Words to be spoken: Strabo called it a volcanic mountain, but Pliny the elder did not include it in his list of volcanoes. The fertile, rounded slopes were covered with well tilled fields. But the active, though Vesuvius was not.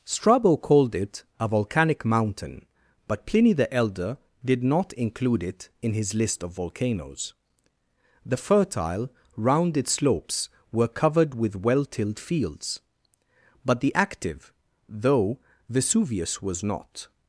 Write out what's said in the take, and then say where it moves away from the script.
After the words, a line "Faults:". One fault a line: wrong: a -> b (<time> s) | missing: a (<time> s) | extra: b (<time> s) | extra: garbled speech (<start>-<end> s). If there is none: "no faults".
Strabo called it a volcanic mountain, but Pliny the elder did not include it in his list of volcanoes. The fertile, rounded slopes were covered with well tilled fields. But the active, though Vesuvius was not.
Faults:
no faults